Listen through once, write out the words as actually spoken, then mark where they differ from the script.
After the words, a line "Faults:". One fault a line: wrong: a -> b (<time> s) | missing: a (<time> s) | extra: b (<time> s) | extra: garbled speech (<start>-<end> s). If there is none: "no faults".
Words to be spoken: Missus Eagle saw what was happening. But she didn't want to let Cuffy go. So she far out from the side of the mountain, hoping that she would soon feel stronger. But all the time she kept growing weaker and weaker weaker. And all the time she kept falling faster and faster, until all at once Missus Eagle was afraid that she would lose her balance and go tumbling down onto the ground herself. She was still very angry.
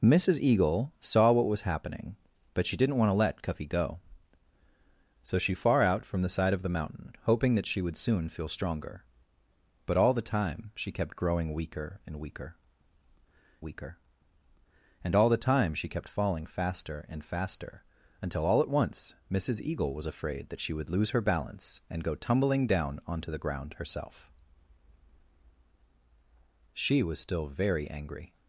Missus Eagle saw what was happening. But she didn't want to let Cuffy go. So she far out from the side of the mountain, hoping that she would soon feel stronger. But all the time she kept growing weaker and weaker weaker. And all the time she kept falling faster and faster, until all at once Missus Eagle was afraid that she would lose her balance and go tumbling down onto the ground herself. She was still very angry.
Faults:
no faults